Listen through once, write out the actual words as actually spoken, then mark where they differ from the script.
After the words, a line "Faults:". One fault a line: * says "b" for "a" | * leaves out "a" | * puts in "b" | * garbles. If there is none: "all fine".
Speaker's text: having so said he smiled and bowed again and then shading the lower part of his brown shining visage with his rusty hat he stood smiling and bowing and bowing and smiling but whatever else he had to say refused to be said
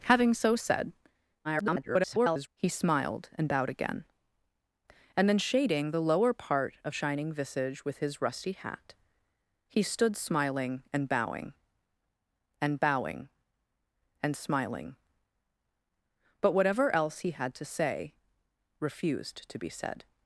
having so said [garbled] he smiled and bowed again and then shading the lower part of shining visage with his rusty hat he stood smiling and bowing and bowing and smiling but whatever else he had to say refused to be said
Faults:
* garbles
* leaves out "his brown"